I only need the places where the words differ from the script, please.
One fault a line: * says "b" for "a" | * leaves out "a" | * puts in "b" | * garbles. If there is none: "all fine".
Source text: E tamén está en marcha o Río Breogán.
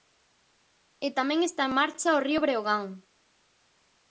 all fine